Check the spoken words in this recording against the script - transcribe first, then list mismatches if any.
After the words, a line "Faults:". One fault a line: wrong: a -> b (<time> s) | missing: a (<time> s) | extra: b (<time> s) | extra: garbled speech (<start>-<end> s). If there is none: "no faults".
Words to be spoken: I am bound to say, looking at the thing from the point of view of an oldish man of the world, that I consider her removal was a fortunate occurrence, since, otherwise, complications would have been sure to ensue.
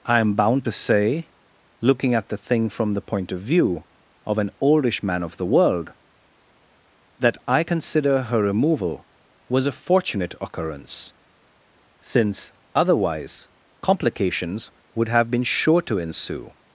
I am bound to say, looking at the thing from the point of view of an oldish man of the world, that I consider her removal was a fortunate occurrence, since, otherwise, complications would have been sure to ensue.
Faults:
no faults